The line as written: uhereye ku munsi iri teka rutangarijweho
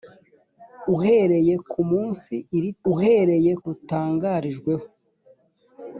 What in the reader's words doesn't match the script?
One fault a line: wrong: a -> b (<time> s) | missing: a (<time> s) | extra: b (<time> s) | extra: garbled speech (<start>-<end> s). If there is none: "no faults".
wrong: teka -> uhereye (2.9 s)